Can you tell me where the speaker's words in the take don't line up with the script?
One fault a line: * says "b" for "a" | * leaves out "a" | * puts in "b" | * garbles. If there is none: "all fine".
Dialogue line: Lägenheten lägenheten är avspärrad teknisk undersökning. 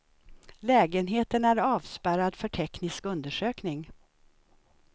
* leaves out "lägenheten"
* puts in "för"